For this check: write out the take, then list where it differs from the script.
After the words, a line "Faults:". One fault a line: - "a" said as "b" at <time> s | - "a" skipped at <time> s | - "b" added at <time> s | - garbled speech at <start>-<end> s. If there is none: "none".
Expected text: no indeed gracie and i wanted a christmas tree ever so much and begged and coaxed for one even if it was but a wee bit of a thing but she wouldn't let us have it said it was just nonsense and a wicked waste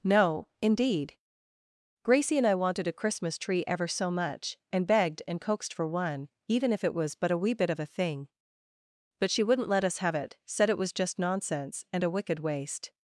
no indeed gracie and i wanted a christmas tree ever so much and begged and coaxed for one even if it was but a wee bit of a thing but she wouldn't let us have it said it was just nonsense and a wicked waste
Faults:
none